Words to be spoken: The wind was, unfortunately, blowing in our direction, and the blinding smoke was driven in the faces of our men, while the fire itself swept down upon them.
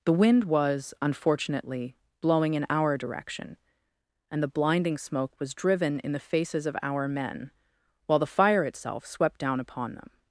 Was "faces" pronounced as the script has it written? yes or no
yes